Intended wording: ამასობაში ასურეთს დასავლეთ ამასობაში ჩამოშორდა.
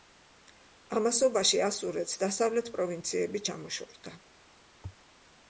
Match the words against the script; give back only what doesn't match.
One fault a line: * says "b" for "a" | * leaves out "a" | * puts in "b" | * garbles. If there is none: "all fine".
* says "პროვინციები" for "ამასობაში"